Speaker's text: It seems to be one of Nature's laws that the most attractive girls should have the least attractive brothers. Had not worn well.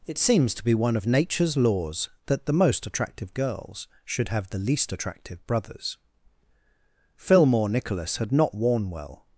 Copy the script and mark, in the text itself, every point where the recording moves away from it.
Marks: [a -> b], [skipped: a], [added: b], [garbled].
It seems to be one of Nature's laws that the most attractive girls should have the least attractive brothers. [added: Fillmore Nicholas] Had not worn well.